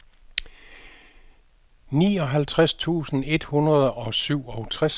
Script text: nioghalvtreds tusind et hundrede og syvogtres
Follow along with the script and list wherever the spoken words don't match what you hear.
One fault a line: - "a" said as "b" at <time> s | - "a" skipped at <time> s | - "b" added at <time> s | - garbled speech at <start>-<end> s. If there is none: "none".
none